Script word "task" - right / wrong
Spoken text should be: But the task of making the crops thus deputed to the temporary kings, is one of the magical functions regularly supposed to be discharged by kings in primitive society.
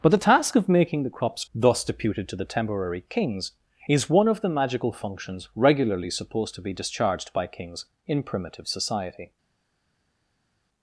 right